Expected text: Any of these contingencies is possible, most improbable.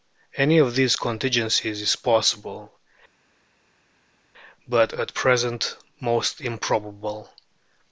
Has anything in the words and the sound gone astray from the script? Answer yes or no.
yes